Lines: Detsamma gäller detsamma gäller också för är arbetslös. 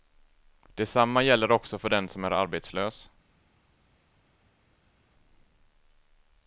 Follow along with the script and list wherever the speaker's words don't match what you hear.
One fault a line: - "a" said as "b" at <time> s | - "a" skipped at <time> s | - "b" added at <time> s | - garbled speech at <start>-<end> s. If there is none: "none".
- "detsamma gäller också för" said as "också för den som" at 1.5 s